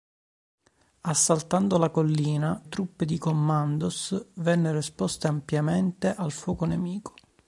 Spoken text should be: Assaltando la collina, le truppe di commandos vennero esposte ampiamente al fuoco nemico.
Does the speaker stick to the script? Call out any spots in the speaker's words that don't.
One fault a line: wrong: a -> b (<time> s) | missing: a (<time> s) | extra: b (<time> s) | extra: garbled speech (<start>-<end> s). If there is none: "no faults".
missing: le (2.6 s)